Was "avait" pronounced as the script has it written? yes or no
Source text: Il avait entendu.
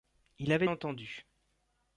yes